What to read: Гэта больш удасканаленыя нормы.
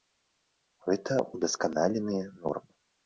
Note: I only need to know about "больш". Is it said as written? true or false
false